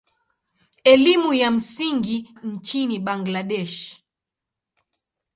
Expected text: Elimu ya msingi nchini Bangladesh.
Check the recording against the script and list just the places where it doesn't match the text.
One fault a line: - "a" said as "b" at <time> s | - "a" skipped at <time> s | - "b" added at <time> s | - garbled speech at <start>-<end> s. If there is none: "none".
none